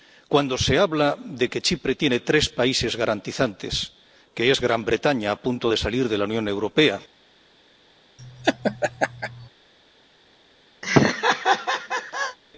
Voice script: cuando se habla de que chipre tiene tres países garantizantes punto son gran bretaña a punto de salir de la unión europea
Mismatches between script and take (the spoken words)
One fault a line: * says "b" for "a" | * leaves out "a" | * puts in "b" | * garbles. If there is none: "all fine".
* says "que" for "punto"